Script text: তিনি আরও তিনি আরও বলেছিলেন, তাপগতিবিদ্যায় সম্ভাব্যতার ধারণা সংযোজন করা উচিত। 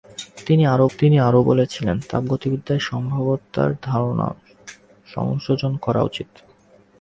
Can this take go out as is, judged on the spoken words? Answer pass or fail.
pass